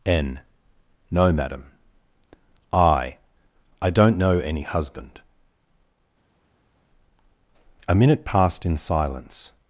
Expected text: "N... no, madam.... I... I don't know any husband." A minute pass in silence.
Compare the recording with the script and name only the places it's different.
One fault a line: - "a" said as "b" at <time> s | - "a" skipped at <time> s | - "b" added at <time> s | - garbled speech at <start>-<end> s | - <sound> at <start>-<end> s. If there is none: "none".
- "pass" said as "passed" at 8.3 s